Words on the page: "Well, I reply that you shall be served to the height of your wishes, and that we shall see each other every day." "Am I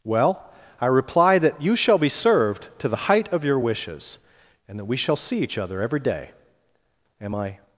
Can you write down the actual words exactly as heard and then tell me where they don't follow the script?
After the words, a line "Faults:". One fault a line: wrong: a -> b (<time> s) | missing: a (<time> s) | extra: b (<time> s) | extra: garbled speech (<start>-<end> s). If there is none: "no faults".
"Well, I reply that you shall be served to the height of your wishes, and that we shall see each other every day." "Am I
Faults:
no faults